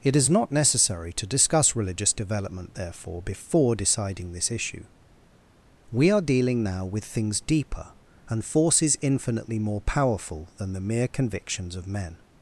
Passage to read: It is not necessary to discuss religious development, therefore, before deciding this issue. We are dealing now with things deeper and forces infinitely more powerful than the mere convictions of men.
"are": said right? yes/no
yes